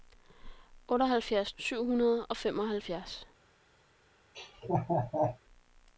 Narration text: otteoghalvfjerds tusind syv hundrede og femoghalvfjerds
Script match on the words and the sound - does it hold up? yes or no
no